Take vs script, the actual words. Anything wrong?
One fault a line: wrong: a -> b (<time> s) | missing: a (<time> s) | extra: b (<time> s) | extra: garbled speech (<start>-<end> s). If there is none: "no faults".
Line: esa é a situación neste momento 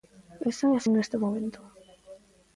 missing: situación (0.8 s)